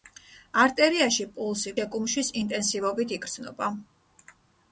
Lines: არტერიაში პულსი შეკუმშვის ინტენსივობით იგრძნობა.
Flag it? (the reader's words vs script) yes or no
no